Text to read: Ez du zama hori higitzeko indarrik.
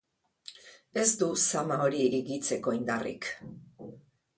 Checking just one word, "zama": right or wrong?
right